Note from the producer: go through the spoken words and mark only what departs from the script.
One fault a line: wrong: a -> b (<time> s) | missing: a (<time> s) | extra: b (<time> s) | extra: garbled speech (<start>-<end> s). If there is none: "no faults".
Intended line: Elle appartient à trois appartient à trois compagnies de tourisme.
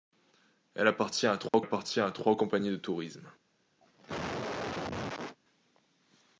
no faults